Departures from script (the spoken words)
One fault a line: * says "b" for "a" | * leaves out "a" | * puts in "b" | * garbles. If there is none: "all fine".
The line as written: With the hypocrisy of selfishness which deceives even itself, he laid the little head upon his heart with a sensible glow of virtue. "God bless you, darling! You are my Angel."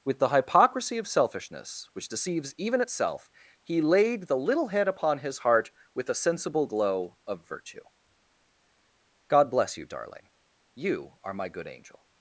* puts in "Good"